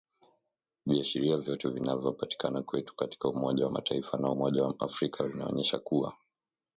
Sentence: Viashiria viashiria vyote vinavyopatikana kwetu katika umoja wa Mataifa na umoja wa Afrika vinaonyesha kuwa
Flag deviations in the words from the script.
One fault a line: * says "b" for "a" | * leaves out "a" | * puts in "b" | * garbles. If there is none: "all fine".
* leaves out "viashiria"